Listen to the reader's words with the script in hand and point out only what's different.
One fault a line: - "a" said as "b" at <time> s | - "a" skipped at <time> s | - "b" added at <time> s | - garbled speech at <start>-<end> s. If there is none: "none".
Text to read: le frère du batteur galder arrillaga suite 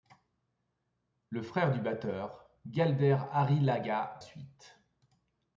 none